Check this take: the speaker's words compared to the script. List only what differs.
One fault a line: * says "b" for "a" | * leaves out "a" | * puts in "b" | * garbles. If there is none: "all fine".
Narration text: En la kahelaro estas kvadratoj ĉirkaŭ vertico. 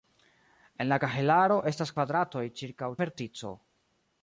all fine